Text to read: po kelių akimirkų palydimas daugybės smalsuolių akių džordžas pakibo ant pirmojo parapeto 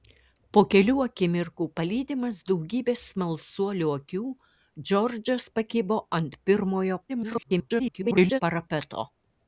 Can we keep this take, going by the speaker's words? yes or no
no